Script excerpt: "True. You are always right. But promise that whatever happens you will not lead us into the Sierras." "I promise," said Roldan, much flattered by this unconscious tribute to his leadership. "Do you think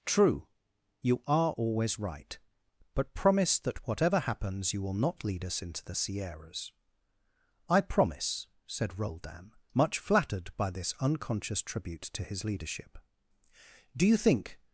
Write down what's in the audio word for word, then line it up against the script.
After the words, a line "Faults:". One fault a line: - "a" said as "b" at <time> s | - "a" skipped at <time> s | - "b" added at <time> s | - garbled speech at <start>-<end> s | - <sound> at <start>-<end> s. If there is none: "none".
"True. You are always right. But promise that whatever happens you will not lead us into the Sierras." "I promise," said Roldan, much flattered by this unconscious tribute to his leadership. "Do you think
Faults:
none